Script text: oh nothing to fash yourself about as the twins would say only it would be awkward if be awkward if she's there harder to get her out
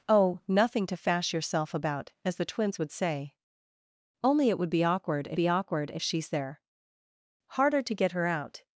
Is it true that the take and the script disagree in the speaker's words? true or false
false